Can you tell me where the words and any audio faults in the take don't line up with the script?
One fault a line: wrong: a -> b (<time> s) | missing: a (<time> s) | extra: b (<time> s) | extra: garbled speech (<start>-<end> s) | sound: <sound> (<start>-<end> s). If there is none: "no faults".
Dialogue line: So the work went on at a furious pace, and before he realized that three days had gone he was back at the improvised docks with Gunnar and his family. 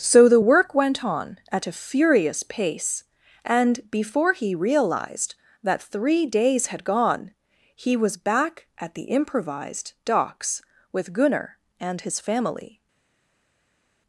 no faults